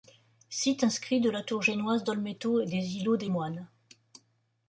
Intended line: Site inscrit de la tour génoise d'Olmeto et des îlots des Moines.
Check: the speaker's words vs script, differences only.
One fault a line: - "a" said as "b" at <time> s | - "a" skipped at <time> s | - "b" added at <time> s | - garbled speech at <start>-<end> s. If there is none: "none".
none